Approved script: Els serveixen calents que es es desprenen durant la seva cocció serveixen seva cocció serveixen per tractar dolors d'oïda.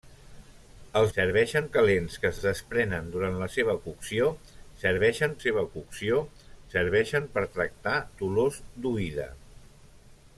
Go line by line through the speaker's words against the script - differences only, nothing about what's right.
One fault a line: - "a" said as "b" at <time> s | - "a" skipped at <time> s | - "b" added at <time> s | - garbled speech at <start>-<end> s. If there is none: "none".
none